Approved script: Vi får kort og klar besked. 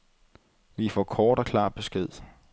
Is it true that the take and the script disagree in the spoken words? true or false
false